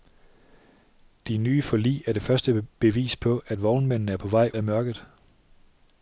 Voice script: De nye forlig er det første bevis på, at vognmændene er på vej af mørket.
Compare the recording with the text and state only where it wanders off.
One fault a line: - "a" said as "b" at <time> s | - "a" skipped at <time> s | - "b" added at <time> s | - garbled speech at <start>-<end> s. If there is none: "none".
none